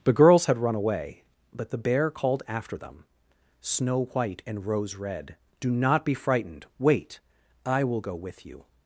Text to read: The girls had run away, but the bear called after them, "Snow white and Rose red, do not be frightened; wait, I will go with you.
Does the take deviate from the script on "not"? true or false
false